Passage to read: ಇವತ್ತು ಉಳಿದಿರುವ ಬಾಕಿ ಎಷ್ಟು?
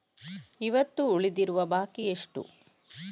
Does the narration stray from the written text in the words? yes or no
no